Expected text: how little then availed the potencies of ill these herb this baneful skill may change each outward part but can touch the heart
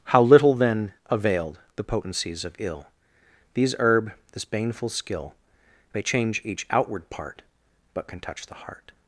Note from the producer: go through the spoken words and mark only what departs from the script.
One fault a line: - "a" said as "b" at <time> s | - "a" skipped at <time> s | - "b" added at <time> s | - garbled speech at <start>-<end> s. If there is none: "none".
none